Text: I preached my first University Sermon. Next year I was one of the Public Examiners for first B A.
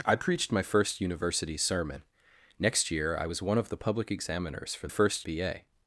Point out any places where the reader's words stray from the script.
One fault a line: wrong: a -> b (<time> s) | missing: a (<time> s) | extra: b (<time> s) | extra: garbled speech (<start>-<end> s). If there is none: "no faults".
no faults